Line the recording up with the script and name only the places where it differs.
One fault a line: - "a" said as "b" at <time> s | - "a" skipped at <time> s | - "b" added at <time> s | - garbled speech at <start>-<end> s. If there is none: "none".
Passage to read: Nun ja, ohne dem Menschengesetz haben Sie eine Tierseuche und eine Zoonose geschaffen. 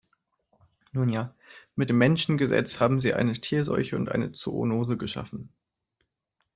- "ohne" said as "mit" at 1.8 s